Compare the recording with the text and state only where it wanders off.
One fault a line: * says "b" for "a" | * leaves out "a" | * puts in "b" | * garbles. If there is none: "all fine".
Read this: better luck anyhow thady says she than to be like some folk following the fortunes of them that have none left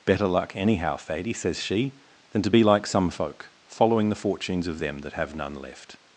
all fine